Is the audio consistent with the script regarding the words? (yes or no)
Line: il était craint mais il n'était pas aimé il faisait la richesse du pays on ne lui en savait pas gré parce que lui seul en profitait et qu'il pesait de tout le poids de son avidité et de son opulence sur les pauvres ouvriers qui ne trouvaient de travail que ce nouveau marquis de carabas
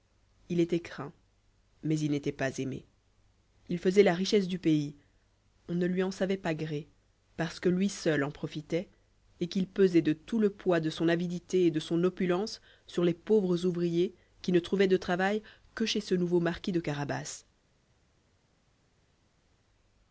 no